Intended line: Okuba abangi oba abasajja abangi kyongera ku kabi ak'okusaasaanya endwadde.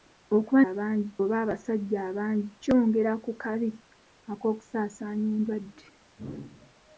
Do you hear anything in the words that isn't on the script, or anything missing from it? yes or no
no